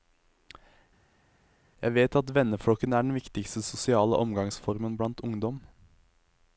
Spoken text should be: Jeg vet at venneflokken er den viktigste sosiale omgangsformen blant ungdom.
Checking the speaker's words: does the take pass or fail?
pass